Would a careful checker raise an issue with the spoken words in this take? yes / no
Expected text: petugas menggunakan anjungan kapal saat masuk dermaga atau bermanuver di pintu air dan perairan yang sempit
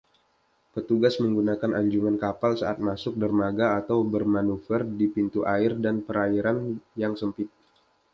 no